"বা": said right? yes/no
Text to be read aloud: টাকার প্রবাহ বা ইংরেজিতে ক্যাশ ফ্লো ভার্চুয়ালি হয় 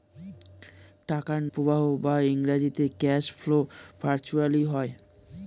yes